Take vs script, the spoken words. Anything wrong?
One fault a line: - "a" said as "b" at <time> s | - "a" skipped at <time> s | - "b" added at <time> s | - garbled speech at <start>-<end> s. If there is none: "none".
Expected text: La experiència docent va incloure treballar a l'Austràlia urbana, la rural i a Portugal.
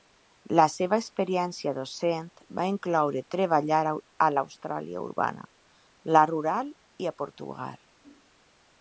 - "seva" added at 0.8 s